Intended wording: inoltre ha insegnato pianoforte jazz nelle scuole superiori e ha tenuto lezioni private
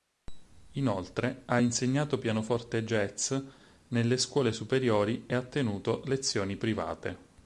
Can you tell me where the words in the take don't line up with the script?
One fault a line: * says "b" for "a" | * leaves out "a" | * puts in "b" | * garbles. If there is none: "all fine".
all fine